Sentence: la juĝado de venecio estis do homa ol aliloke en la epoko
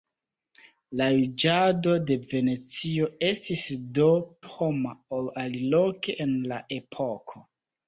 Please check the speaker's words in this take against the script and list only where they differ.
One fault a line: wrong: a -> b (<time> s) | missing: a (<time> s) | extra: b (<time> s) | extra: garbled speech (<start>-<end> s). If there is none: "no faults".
no faults